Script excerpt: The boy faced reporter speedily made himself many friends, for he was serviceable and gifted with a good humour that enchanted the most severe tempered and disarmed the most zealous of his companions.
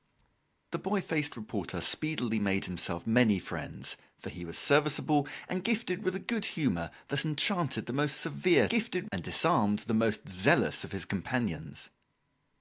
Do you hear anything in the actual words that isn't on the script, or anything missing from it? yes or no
yes